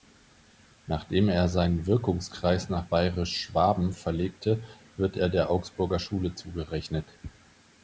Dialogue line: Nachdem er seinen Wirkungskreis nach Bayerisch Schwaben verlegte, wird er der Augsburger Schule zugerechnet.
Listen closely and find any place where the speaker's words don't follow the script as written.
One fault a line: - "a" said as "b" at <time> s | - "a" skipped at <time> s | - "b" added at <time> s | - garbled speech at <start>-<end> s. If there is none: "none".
none